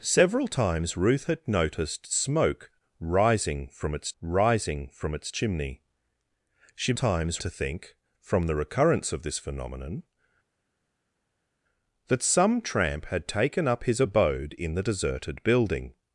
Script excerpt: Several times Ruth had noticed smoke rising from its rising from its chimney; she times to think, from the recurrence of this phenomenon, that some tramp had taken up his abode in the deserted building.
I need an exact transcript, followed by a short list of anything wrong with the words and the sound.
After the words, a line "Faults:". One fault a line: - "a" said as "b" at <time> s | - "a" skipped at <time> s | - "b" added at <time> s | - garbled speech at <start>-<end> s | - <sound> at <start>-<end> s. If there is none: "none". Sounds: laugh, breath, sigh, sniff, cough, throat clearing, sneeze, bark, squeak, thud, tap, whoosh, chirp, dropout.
Several times Ruth had noticed smoke rising from its rising from its chimney; she times to think, from the recurrence of this phenomenon, that some tramp had taken up his abode in the deserted building.
Faults:
none